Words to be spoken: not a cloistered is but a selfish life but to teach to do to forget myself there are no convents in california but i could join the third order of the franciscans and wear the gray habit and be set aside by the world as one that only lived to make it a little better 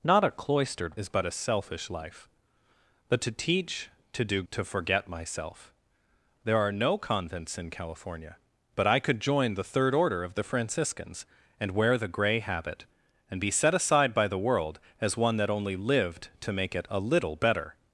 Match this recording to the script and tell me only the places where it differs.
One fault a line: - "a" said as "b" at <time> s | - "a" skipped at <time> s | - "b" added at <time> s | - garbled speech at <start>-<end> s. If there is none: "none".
none